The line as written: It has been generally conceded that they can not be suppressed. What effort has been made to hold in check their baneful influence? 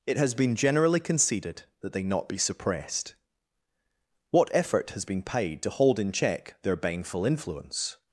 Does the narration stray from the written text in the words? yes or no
yes